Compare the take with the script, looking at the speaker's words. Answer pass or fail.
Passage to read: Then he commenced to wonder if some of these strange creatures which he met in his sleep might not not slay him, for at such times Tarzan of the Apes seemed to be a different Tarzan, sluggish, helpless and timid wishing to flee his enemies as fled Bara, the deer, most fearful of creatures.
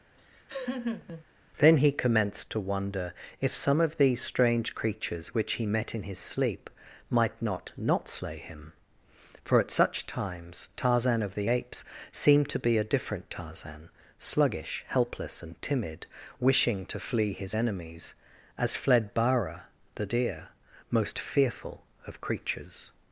pass